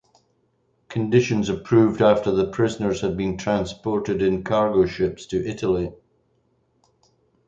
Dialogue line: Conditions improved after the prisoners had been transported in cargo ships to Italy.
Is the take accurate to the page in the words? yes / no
yes